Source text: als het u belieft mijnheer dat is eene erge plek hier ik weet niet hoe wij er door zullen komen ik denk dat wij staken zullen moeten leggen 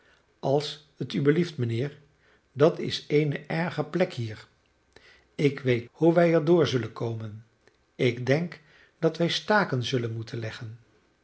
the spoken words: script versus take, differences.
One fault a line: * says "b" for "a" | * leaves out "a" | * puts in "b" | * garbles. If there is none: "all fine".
* leaves out "niet"